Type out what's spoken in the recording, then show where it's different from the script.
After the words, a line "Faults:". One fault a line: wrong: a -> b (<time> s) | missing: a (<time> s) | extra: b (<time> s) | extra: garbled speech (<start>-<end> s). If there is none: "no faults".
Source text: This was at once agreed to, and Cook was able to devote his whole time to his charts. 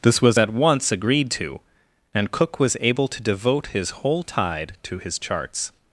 This was at once agreed to, and Cook was able to devote his whole tide to his charts.
Faults:
wrong: time -> tide (4.2 s)